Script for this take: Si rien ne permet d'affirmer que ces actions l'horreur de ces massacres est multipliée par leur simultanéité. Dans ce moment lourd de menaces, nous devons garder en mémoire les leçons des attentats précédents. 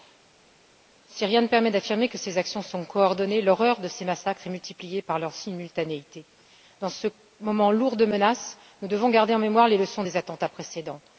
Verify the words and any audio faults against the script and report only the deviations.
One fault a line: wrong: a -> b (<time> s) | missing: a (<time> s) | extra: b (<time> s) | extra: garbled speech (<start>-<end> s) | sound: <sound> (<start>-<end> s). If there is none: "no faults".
extra: sont coordonnées (2.6 s)